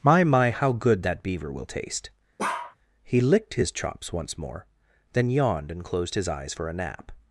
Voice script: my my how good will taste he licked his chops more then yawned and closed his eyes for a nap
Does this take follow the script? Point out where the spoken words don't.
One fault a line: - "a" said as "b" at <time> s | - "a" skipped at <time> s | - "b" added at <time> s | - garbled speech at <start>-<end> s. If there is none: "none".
- "that beaver" added at 1.0 s
- "once" added at 4.1 s